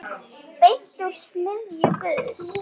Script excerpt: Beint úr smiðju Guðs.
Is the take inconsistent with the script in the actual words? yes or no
no